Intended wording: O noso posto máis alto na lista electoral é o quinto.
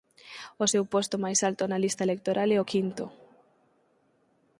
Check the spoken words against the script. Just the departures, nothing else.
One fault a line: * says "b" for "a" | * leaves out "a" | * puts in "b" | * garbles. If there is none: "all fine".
* says "seu" for "noso"